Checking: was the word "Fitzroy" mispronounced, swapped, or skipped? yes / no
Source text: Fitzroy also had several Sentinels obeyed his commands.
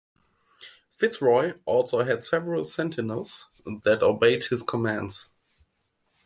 no